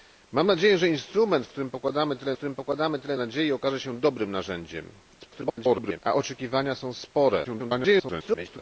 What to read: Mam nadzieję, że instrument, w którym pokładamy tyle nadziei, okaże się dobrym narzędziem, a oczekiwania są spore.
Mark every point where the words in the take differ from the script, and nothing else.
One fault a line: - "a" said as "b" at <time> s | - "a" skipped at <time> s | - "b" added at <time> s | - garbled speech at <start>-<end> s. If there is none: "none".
- "którym pokładamy tyle" added at 2.3 s
- garbled speech at 5.2-6.0 s
- garbled speech at 7.4-8.6 s